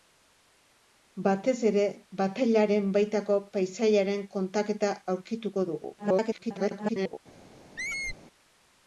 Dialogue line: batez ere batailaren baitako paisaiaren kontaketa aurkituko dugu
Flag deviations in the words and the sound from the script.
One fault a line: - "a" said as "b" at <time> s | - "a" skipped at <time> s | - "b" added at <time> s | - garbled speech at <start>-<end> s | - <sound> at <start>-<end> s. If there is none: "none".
- garbled speech at 6.0-7.2 s
- squeak at 7.8-8.2 s